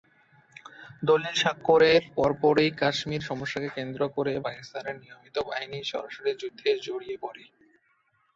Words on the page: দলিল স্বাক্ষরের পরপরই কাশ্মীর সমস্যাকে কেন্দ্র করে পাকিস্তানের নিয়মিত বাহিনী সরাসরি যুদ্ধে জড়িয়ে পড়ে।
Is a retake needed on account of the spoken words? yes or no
no